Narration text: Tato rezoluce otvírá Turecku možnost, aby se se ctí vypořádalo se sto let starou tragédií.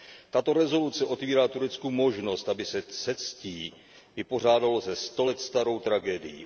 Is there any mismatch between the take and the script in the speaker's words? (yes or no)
no